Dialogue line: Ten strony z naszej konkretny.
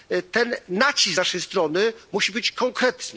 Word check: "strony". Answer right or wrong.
wrong